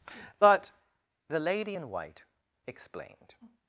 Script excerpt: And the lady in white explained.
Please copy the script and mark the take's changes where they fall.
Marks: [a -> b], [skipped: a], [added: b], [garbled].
[And -> But] the lady in white explained.